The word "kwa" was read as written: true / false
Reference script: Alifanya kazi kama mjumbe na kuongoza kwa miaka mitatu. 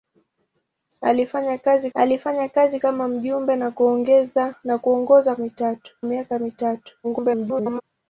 false